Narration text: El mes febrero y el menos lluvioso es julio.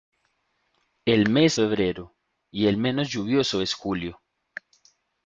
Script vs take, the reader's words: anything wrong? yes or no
no